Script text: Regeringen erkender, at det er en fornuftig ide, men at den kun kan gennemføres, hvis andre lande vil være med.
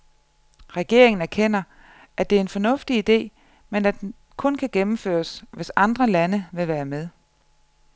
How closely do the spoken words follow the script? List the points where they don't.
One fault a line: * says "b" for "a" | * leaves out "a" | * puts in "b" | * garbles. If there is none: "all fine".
all fine